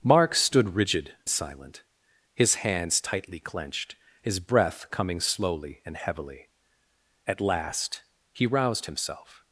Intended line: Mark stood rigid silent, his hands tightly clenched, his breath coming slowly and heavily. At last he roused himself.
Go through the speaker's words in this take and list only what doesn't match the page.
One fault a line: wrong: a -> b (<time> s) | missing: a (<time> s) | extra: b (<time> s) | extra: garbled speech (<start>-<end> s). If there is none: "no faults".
no faults